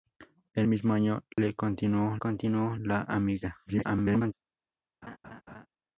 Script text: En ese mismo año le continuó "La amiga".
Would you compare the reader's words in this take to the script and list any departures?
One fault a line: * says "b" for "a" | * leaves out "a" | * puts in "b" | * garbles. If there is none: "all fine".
* leaves out "ese"
* puts in "continuó"
* garbles